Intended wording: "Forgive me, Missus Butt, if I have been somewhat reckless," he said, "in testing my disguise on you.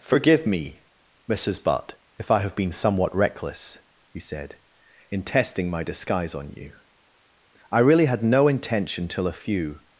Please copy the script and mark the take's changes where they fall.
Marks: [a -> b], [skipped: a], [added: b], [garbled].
"Forgive me, Missus Butt, if I have been somewhat reckless," he said, "in testing my disguise on you. [added: I really had no intention till a few]